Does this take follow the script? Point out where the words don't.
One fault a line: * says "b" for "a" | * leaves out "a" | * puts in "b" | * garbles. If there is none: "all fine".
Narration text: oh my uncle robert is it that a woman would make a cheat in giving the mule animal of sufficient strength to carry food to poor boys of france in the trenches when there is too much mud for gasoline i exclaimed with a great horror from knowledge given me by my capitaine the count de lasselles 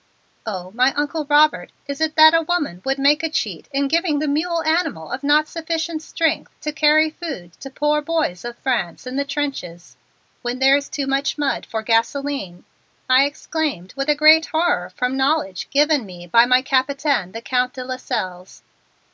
* puts in "not"